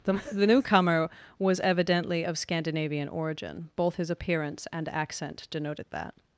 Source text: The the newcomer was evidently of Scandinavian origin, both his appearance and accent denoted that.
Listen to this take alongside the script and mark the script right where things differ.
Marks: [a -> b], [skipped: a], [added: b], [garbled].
The the newcomer was evidently of Scandinavian origin, both his appearance and accent denoted that.